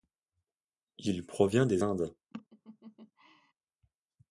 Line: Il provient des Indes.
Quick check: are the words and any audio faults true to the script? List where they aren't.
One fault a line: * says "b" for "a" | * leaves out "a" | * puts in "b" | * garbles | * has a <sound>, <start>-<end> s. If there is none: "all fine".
* has a laugh, 2.3-3.5 s